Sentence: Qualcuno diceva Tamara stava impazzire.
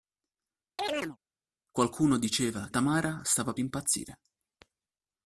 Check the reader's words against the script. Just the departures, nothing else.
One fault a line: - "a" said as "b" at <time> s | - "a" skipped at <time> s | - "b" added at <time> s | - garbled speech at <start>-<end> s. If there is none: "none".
none